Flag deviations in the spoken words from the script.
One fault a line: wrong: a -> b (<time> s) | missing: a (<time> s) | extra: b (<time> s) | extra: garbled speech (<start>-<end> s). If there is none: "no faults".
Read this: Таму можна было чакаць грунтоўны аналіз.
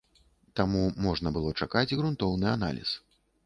no faults